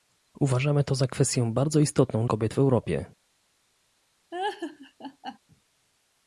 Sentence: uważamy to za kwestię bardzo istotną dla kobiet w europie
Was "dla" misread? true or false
true